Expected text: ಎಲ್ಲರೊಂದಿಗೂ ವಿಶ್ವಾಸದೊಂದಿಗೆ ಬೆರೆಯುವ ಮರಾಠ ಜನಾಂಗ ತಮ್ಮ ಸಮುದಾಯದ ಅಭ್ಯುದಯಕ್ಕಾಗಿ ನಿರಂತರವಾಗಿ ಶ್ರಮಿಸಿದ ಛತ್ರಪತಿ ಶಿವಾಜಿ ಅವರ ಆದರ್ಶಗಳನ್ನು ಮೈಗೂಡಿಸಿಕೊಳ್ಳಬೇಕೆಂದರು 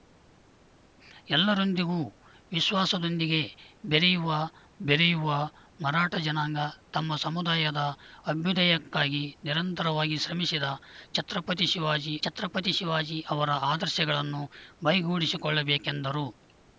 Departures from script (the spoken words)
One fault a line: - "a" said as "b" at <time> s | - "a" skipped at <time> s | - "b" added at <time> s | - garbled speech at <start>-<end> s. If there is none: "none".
- "ಬೆರೆಯುವ" added at 4.8 s
- "ಛತ್ರಪತಿ ಶಿವಾಜಿ" added at 12.2 s